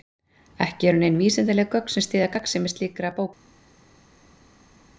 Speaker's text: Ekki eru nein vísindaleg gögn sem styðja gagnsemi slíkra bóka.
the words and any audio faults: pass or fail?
pass